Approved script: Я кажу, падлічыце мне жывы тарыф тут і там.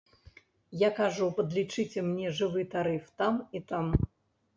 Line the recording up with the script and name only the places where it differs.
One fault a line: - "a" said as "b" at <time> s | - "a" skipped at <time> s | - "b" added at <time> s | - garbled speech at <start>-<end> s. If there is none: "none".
- "тут" said as "там" at 3.2 s